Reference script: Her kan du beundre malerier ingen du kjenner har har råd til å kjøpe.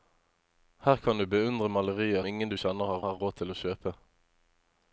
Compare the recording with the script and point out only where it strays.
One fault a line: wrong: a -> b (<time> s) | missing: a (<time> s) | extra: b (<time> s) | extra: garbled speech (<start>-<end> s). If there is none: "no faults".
no faults